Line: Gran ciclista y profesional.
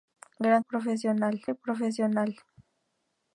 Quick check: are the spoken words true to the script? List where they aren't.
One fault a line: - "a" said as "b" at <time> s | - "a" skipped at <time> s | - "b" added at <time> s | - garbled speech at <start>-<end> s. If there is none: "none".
- "ciclista" said as "profesional" at 0.6 s